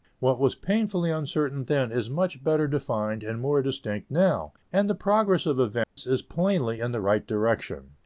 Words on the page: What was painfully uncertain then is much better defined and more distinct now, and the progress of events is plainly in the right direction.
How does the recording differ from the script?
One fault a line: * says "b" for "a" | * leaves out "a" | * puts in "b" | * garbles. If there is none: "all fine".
all fine